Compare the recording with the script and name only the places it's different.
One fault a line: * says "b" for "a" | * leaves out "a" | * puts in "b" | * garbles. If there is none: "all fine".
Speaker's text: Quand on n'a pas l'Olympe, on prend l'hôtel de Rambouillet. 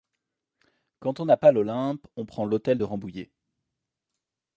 all fine